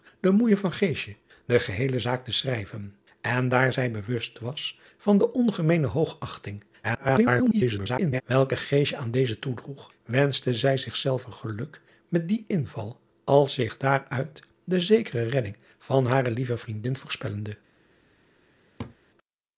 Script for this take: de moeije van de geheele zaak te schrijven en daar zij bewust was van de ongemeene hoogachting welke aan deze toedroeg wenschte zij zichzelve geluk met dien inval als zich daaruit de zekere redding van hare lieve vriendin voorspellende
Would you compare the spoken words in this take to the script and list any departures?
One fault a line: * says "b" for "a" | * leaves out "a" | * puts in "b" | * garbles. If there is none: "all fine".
* garbles